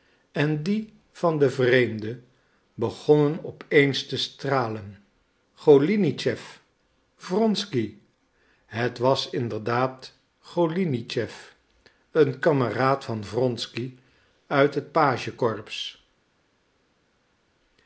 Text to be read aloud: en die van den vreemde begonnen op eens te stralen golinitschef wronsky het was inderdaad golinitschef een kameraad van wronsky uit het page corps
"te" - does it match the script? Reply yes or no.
yes